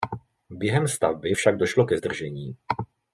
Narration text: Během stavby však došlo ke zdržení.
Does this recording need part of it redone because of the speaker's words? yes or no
no